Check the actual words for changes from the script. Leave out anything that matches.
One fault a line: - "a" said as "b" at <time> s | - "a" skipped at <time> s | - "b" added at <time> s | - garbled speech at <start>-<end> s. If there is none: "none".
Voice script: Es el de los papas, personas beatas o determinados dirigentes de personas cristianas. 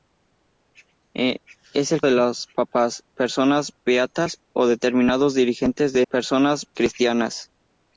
none